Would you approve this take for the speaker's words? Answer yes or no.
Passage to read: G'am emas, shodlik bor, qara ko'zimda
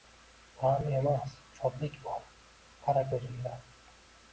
yes